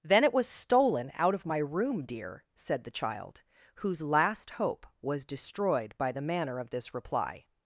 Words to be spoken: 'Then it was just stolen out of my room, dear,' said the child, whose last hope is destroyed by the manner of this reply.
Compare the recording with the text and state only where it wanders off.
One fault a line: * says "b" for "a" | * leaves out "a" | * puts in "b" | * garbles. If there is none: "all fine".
* leaves out "just"
* says "was" for "is"